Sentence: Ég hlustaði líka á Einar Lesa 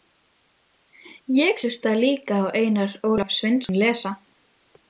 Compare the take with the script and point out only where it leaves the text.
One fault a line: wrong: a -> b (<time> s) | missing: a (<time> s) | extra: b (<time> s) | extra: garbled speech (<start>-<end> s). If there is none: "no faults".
extra: Ólaf Sveinsson (3.1 s)